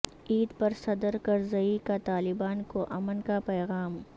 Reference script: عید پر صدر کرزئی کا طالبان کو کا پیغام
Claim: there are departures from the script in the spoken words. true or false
true